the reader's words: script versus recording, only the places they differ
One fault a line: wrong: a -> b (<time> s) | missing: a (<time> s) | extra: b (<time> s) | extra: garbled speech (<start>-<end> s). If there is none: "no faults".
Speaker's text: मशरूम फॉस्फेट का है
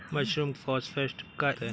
no faults